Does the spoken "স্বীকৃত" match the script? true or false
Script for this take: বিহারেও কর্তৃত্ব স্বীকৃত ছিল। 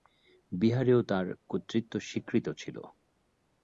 true